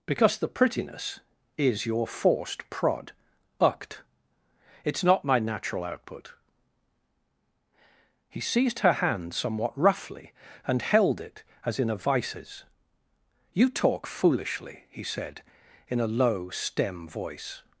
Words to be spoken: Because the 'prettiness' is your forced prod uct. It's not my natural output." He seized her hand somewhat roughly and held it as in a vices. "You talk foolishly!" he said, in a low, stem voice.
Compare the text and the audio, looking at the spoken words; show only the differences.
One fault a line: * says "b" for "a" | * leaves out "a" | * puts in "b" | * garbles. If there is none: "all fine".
all fine